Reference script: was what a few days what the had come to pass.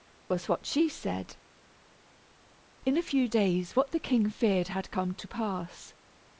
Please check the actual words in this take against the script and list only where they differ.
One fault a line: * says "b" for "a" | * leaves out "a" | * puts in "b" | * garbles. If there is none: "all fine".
* puts in "she said In"
* puts in "king feared"